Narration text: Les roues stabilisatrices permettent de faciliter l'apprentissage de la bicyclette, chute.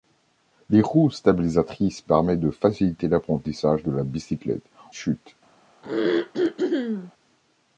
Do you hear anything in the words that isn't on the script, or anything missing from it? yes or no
no